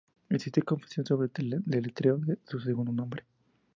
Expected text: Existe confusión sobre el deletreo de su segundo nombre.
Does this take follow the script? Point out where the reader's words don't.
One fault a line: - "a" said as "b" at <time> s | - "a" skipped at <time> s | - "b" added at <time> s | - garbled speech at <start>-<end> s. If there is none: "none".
none